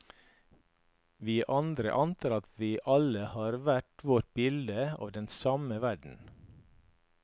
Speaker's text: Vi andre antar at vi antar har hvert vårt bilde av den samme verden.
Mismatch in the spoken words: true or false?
true